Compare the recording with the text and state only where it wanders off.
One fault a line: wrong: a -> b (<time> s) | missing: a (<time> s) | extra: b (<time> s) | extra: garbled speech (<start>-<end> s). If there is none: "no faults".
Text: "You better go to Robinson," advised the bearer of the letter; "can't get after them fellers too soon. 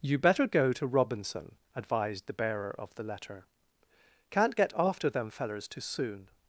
no faults